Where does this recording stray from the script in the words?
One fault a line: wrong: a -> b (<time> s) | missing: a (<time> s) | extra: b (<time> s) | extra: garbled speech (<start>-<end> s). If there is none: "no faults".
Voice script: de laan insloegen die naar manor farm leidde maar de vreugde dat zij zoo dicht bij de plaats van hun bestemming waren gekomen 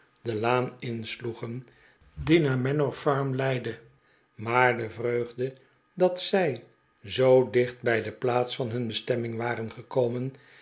no faults